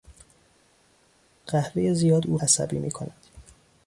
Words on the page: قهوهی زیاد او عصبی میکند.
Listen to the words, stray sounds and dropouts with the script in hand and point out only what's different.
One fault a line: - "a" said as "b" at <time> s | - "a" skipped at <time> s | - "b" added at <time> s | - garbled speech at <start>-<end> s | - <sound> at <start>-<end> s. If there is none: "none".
none